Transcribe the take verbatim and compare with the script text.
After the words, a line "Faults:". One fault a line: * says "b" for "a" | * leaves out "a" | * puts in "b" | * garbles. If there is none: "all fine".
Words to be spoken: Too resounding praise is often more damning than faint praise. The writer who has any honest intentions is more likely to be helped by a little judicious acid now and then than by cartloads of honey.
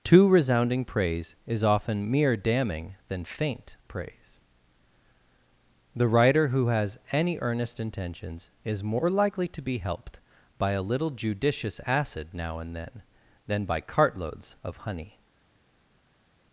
Too resounding praise is often mere damning than faint praise. The writer who has any earnest intentions is more likely to be helped by a little judicious acid now and then than by cartloads of honey.
Faults:
* says "mere" for "more"
* says "earnest" for "honest"